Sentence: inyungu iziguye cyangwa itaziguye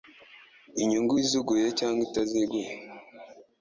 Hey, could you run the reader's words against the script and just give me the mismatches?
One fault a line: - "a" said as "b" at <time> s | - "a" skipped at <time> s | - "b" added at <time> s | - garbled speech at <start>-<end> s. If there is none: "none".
none